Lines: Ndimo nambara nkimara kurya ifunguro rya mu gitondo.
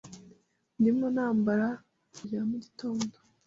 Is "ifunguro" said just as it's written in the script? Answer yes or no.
no